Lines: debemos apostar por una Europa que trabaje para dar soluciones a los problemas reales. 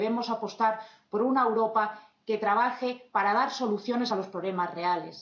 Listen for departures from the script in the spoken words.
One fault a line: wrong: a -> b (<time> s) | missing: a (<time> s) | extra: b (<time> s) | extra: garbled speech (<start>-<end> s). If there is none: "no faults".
no faults